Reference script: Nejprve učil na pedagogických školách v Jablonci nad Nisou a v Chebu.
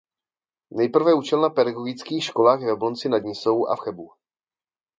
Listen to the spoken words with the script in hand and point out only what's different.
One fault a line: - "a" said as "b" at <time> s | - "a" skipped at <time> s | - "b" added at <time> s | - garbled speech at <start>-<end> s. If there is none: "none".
none